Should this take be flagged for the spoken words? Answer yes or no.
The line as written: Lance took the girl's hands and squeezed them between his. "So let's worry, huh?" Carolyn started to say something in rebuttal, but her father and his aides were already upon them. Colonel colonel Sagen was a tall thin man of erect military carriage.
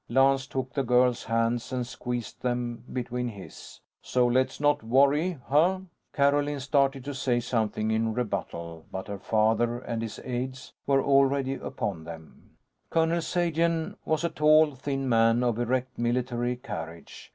yes